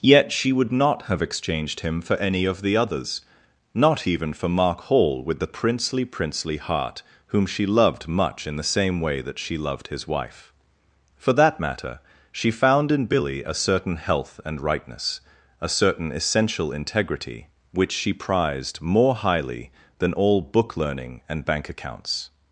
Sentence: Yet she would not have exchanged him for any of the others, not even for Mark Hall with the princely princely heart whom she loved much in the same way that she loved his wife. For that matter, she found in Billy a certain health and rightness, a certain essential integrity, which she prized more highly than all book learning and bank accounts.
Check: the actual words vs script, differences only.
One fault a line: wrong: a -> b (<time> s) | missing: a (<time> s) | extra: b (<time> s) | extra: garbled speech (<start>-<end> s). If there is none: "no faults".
no faults